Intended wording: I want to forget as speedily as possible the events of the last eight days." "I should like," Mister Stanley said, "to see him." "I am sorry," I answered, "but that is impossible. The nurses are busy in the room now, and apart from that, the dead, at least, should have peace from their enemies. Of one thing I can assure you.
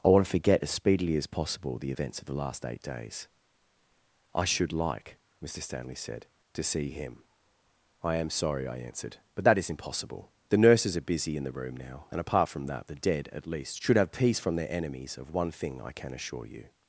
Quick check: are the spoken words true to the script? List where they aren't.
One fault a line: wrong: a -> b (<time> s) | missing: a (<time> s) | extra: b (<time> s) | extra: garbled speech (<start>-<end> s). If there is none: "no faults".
no faults